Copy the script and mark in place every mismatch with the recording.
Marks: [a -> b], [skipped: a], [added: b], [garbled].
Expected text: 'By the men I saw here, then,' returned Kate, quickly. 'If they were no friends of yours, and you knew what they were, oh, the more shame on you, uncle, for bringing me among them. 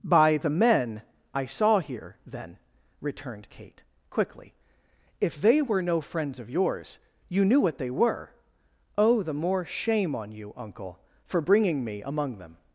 'By the men I saw here, then,' returned Kate, quickly. 'If they were no friends of yours, [skipped: and] you knew what they were, oh, the more shame on you, uncle, for bringing me among them.